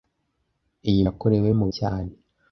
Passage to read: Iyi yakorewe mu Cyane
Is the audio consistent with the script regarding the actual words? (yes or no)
yes